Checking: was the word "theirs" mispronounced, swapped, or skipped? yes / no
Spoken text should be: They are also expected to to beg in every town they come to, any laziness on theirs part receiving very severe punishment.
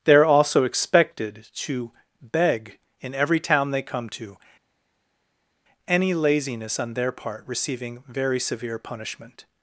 yes